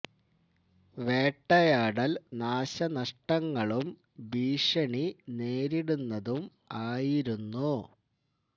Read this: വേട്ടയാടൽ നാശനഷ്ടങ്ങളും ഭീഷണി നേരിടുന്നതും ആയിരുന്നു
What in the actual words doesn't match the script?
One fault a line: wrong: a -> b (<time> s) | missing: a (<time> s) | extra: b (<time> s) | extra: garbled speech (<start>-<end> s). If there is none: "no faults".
no faults